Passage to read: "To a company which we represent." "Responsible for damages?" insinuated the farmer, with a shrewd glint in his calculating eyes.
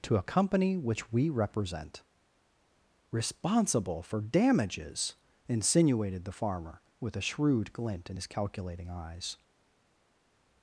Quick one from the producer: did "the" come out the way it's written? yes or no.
yes